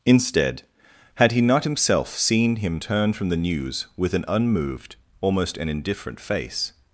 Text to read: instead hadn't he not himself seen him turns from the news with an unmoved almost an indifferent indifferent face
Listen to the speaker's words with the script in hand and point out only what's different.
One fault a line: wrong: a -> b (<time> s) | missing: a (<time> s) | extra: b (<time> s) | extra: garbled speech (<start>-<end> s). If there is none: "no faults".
wrong: hadn't -> had (1.1 s)
wrong: turns -> turn (2.8 s)
missing: indifferent (6.2 s)